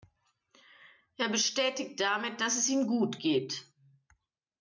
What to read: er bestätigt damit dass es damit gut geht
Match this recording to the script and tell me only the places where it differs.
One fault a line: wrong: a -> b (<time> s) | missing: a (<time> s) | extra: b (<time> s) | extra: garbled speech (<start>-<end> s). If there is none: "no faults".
wrong: damit -> ihm (2.7 s)